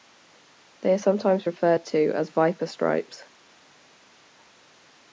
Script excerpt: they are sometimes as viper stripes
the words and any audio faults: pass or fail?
fail